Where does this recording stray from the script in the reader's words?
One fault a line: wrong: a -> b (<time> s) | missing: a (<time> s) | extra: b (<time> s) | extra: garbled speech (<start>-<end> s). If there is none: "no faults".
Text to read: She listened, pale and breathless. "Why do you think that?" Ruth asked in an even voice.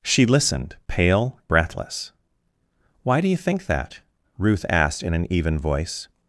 missing: and (1.4 s)